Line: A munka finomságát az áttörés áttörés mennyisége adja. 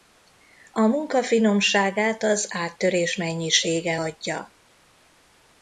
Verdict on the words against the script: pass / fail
fail